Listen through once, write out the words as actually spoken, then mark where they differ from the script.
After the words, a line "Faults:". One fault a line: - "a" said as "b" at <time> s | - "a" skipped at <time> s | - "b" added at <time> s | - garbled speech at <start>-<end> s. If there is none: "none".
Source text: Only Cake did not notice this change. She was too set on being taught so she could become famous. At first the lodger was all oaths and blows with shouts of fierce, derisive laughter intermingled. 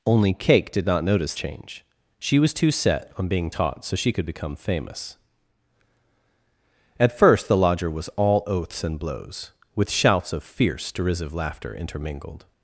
Only Cake did not notice change. She was too set on being taught so she could become famous. At first the lodger was all oaths and blows with shouts of fierce, derisive laughter intermingled.
Faults:
- "this" skipped at 1.4 s